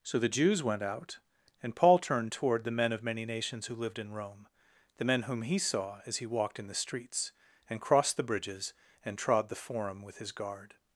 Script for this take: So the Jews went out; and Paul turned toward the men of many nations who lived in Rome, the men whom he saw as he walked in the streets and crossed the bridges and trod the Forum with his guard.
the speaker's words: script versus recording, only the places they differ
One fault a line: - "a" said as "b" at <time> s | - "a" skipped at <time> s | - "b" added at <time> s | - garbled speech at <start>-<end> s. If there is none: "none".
none